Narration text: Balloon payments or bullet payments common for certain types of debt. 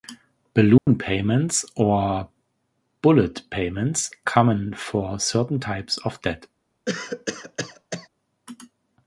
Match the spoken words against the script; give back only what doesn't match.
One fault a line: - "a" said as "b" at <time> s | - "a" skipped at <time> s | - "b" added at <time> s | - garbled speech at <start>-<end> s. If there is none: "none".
none